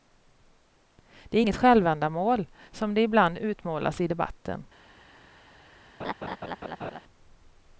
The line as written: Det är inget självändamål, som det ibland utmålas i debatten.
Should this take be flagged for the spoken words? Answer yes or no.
no